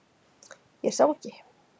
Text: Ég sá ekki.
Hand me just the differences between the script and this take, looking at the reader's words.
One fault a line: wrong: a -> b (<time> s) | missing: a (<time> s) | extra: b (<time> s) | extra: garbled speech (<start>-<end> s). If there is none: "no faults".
no faults